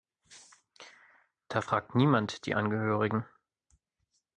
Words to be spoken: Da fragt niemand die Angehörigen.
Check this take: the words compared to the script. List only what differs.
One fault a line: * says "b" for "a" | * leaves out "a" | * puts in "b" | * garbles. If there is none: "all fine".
all fine